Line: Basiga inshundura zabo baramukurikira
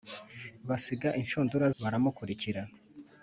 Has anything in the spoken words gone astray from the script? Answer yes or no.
yes